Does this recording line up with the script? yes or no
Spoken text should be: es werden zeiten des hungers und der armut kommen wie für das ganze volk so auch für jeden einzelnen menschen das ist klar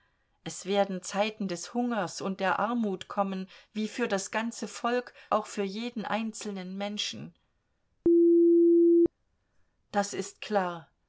no